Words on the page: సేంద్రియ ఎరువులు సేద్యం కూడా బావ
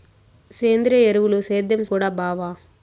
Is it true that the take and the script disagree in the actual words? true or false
false